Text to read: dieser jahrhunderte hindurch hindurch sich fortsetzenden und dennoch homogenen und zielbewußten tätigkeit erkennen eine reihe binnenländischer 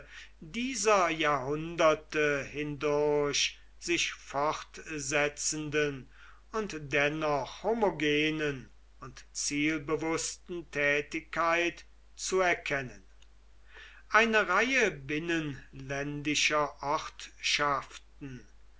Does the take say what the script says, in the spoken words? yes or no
no